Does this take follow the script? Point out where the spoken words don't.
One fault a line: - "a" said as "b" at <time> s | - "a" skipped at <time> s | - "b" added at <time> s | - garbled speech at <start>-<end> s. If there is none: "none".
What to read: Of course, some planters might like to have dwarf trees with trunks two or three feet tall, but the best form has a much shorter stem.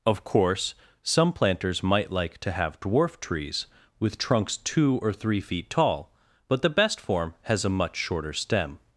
none